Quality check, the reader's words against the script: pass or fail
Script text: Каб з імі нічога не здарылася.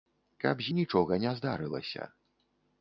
fail